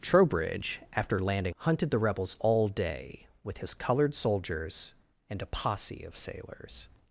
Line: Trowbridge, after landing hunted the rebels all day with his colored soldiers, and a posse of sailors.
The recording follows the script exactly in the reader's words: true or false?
true